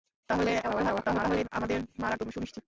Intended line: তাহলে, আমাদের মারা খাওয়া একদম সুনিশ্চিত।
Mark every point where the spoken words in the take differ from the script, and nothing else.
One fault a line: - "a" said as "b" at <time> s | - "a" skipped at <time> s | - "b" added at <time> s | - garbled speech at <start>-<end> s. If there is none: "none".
- garbled speech at 0.6-1.5 s
- "খাওয়া" skipped at 2.2 s